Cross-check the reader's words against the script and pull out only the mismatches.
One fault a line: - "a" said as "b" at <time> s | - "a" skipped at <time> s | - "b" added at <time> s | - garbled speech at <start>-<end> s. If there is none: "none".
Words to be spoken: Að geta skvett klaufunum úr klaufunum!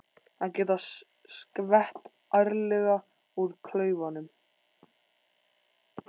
- "klaufunum" said as "ærlega" at 2.4 s